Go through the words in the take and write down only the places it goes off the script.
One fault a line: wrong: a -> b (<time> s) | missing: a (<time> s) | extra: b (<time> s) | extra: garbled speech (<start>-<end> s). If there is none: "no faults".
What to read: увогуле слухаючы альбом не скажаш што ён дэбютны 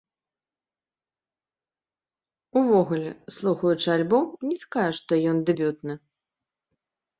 no faults